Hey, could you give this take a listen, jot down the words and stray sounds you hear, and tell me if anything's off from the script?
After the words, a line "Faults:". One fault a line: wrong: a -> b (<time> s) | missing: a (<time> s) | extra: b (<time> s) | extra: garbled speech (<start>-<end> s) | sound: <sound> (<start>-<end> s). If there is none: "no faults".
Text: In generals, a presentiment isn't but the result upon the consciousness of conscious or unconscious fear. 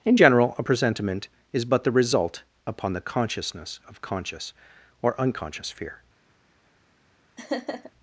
In general, a presentiment is but the result upon the consciousness of conscious or unconscious fear.
Faults:
wrong: generals -> general (0.1 s)
wrong: isn't -> is (1.5 s)
sound: laugh (7.4-7.9 s)